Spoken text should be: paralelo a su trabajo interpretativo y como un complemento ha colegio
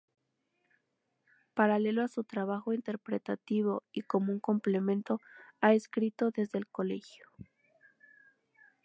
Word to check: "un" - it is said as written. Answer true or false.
true